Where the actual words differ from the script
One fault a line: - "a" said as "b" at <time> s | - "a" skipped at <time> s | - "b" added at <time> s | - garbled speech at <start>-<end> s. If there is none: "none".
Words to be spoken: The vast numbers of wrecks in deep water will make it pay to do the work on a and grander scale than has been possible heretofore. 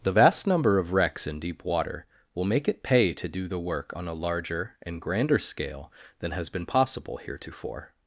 - "numbers" said as "number" at 0.5 s
- "larger" added at 4.1 s